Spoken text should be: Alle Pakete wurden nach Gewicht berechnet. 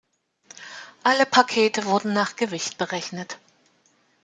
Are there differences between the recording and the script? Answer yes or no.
no